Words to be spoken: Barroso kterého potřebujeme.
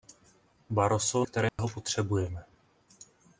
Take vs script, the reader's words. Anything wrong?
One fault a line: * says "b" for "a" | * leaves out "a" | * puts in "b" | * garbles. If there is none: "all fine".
all fine